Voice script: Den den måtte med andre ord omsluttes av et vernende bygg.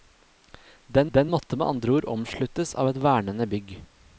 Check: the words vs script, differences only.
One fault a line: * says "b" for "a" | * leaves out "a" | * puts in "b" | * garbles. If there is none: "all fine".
all fine